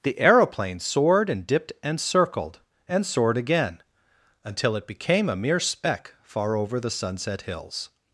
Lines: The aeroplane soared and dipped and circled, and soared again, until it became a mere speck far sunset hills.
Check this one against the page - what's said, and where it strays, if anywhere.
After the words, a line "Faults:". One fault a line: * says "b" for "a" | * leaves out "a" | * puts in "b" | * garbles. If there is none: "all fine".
The aeroplane soared and dipped and circled, and soared again, until it became a mere speck far over the sunset hills.
Faults:
* puts in "over the"